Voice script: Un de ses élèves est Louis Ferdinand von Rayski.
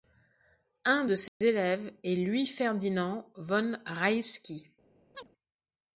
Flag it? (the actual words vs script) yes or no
no